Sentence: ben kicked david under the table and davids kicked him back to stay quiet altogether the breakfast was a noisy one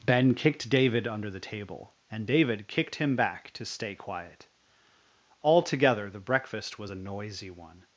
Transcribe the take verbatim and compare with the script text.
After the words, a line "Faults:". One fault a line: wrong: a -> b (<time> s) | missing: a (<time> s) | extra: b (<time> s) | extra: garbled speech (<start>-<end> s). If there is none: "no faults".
ben kicked david under the table and david kicked him back to stay quiet altogether the breakfast was a noisy one
Faults:
wrong: davids -> david (2.3 s)